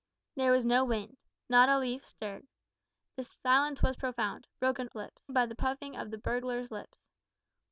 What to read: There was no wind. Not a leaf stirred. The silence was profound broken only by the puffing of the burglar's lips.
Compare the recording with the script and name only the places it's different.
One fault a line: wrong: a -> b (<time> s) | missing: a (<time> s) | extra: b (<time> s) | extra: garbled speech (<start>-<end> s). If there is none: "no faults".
wrong: only -> lips (4.9 s)